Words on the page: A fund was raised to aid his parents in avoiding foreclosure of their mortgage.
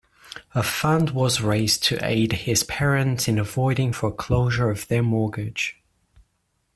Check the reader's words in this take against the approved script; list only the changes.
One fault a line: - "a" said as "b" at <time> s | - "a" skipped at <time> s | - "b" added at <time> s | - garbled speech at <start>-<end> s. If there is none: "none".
none